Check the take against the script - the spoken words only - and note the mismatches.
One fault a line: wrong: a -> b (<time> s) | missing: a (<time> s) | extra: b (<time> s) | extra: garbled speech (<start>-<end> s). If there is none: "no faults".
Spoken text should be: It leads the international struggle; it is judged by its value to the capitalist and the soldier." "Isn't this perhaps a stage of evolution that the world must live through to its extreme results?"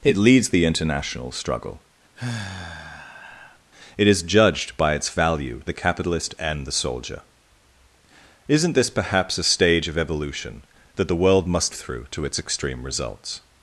missing: to (5.6 s)
missing: live (11.7 s)